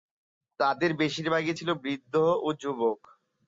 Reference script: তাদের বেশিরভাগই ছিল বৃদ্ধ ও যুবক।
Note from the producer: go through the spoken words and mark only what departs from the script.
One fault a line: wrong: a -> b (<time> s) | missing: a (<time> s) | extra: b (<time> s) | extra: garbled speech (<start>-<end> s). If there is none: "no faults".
no faults